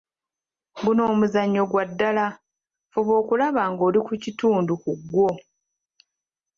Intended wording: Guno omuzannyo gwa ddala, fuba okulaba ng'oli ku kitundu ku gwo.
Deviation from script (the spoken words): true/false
false